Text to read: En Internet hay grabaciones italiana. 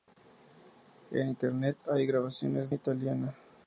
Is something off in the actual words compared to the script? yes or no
no